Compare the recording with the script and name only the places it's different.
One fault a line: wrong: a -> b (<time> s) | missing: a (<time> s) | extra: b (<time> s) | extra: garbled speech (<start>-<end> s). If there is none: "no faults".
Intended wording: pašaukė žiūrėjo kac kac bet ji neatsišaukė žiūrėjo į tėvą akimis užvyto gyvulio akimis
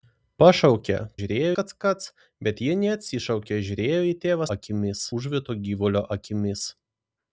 no faults